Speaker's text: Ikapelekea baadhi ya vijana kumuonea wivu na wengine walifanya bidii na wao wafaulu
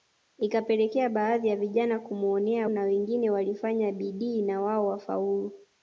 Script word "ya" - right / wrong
right